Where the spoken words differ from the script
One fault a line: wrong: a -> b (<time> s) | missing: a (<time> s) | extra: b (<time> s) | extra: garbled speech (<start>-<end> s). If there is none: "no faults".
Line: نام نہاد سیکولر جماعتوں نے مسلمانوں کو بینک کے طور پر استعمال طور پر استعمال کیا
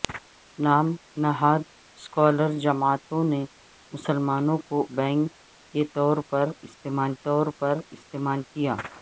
no faults